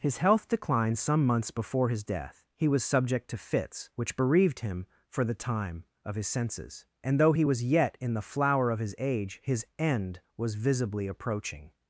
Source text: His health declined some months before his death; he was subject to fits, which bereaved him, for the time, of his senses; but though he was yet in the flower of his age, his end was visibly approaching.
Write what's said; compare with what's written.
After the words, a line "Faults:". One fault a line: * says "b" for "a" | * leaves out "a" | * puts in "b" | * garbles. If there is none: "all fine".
His health declined some months before his death; he was subject to fits, which bereaved him, for the time, of his senses; and though he was yet in the flower of his age, his end was visibly approaching.
Faults:
* says "and" for "but"